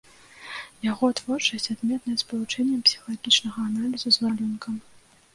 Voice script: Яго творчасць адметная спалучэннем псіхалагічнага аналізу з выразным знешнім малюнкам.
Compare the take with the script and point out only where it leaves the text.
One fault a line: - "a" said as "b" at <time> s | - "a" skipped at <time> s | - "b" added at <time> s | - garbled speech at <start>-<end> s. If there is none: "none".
- "выразным знешнім" skipped at 4.3 s